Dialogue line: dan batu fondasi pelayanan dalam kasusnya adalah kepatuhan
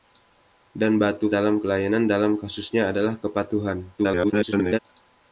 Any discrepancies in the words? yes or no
yes